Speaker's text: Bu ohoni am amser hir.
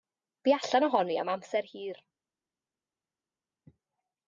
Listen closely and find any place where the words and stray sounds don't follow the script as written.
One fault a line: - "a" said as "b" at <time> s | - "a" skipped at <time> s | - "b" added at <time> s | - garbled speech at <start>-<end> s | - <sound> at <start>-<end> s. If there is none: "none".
- "allan" added at 0.6 s